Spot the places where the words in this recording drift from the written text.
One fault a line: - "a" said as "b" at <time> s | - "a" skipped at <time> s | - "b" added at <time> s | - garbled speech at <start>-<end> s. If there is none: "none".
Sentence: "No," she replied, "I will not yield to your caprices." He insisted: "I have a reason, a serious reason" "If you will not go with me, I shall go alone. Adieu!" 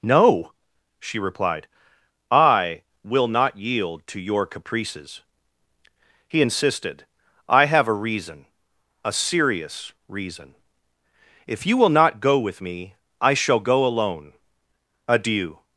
none